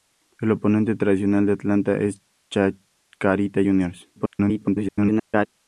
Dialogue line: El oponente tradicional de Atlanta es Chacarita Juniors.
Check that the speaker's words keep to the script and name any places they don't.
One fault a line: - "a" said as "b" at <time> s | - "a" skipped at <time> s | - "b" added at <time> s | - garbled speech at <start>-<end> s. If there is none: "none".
- garbled speech at 4.2-5.5 s